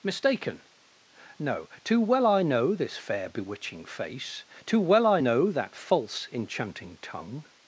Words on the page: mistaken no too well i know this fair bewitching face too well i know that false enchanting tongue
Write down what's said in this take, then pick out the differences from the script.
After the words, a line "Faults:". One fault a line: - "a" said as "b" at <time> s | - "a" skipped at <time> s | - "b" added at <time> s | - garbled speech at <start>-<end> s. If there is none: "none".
mistaken no too well i know this fair bewitching face too well i know that false enchanting tongue
Faults:
none